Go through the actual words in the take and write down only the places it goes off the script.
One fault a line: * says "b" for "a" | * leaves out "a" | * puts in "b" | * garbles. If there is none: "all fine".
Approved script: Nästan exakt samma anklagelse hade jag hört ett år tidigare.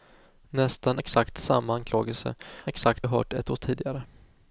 * says "exakt" for "hade"